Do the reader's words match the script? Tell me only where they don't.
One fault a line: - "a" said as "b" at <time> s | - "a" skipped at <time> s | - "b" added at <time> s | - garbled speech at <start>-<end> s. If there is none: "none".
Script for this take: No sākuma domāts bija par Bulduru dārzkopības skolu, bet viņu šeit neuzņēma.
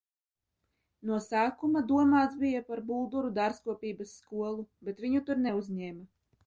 - "šeit" said as "tur" at 5.3 s